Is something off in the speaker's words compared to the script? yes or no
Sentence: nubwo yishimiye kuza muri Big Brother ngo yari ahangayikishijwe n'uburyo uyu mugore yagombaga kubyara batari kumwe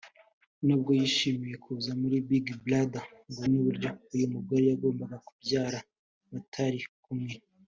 yes